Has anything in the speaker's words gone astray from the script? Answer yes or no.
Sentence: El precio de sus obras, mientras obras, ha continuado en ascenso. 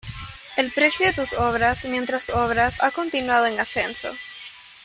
no